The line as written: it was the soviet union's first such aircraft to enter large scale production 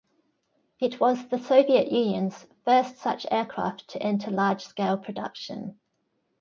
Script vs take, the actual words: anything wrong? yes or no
no